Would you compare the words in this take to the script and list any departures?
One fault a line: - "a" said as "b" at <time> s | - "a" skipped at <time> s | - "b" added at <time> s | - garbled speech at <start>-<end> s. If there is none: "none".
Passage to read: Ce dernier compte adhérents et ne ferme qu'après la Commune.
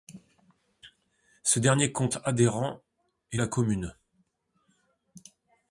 - "ne ferme qu'après" skipped at 3.4 s